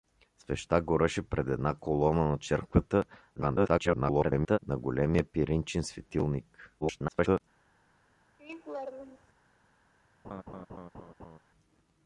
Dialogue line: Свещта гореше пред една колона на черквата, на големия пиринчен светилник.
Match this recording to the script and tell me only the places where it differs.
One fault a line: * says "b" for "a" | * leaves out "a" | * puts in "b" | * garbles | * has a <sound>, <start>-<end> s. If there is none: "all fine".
* garbles
* garbles
* has a laugh, 8.4-9.3 s
* has a laugh, 10.2-11.4 s